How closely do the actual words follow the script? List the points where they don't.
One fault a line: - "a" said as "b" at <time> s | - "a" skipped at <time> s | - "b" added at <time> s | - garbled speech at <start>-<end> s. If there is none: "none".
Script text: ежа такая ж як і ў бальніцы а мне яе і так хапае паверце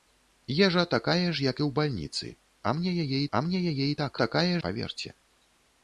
- "а мне яе" added at 3.3 s
- "хапае" said as "такая" at 4.2 s